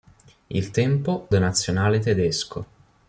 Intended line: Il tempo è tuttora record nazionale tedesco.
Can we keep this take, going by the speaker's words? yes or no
no